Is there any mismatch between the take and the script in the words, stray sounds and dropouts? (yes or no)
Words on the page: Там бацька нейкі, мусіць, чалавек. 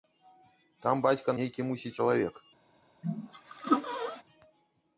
yes